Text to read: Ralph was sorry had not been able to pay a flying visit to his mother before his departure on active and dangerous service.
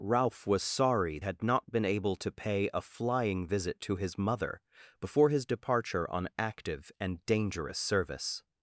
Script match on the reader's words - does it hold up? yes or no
yes